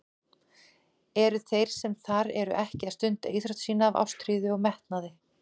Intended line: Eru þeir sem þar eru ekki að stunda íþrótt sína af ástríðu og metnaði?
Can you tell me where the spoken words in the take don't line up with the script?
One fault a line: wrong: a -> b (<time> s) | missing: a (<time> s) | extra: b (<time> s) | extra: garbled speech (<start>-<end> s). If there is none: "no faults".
no faults